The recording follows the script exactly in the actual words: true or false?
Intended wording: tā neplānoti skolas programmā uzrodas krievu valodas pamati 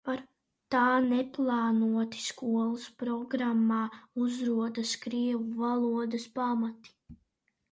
true